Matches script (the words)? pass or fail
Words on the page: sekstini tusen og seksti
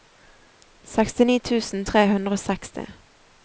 fail